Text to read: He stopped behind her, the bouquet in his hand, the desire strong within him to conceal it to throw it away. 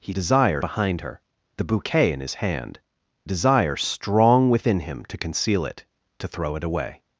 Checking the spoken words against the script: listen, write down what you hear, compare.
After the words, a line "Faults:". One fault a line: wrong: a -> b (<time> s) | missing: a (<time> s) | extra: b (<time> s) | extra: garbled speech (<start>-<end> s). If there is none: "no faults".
He desire behind her, the bouquet in his hand, desire strong within him to conceal it to throw it away.
Faults:
wrong: stopped -> desire (0.1 s)
missing: the (2.8 s)